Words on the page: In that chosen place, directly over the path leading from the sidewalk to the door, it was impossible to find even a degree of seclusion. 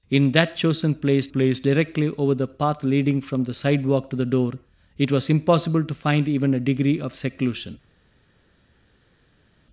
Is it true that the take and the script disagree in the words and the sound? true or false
true